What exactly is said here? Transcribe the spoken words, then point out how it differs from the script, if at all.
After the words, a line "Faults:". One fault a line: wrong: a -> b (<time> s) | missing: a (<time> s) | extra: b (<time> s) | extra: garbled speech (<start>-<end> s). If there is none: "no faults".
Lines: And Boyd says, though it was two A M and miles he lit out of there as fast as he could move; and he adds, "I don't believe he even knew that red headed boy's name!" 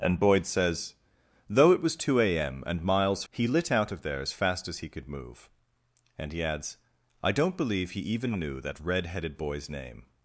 And Boyd says, though it was two A M and miles he lit out of there as fast as he could move; and he adds, "I don't believe he even knew that red headed boy's name!"
Faults:
no faults